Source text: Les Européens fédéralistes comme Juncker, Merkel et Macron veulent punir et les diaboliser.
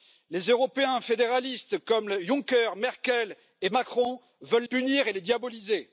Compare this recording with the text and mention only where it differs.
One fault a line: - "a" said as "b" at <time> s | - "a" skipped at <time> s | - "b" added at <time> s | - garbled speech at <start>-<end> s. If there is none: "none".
none